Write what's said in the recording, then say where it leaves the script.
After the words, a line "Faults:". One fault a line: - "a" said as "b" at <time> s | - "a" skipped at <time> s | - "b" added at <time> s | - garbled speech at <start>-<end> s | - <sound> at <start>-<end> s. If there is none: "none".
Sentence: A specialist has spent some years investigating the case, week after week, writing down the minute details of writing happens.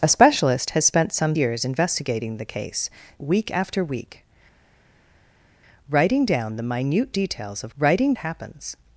A specialist has spent some years investigating the case, week after week, writing down the minute details of writing happens.
Faults:
none